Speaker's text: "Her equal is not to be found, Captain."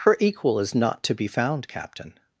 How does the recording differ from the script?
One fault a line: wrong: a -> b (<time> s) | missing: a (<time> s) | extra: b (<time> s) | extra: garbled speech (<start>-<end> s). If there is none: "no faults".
no faults